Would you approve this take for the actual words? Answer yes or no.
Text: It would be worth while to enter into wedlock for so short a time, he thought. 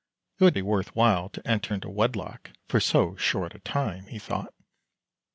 yes